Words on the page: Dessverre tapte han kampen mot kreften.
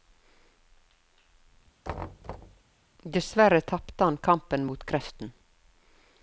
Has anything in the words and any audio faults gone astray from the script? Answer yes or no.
yes